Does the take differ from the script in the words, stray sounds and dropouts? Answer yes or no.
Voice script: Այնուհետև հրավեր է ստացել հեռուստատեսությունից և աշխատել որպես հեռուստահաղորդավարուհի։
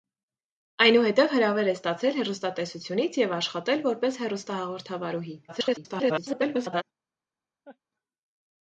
yes